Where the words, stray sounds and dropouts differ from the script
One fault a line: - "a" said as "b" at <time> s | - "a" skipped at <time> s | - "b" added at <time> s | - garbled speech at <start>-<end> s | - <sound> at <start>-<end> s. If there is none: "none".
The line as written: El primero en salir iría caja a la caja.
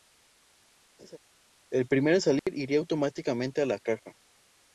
- laugh at 1.0-1.2 s
- dropout at 2.4-2.5 s
- "caja" said as "automáticamente" at 2.8 s